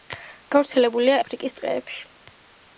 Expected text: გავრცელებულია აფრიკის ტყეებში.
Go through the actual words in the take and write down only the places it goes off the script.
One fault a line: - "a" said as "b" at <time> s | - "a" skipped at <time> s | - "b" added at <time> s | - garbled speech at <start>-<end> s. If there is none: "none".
none